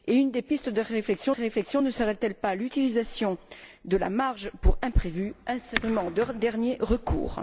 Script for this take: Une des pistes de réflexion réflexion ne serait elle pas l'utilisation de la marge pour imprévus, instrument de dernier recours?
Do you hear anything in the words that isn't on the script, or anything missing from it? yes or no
no